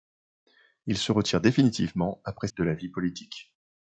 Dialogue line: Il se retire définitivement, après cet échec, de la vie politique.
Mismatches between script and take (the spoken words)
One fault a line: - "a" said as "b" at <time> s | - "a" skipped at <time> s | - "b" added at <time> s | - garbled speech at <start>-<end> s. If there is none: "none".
- "cet échec" skipped at 2.5 s